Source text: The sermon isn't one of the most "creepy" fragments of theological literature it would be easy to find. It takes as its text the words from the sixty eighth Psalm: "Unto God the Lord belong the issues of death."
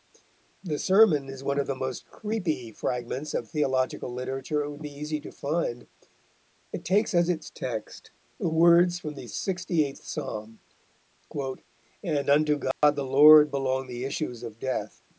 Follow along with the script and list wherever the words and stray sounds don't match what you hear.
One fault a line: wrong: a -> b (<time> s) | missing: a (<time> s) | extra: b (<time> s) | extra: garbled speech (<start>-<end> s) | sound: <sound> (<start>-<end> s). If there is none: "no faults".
wrong: isn't -> is (1.3 s)
extra: And (12.0 s)
sound: dropout (12.7-12.8 s)